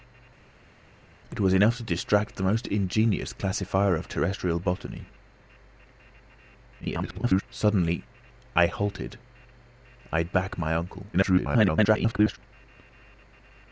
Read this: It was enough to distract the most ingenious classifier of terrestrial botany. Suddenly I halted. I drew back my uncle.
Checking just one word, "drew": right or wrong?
wrong